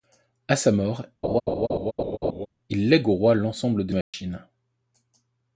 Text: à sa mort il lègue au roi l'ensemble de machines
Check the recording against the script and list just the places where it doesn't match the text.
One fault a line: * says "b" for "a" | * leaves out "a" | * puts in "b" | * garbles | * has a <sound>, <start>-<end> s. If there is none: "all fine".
* has a laugh, 1.2-2.5 s
* has a dropout, 4.0-4.1 s